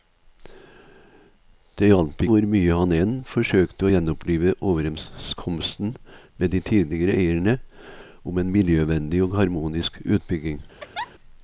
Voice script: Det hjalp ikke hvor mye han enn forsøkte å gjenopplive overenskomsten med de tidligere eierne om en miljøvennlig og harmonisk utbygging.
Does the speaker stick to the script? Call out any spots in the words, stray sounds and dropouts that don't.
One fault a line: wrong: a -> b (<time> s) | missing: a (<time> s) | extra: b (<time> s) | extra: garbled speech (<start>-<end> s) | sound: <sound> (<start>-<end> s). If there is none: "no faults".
missing: ikke (2.2 s)
sound: laugh (10.8-11.1 s)